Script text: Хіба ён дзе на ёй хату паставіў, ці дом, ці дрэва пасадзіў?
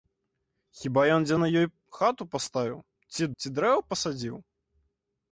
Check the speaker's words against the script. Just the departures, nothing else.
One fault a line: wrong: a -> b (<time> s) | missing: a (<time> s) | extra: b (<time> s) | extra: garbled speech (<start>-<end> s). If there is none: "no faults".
missing: дом (3.2 s)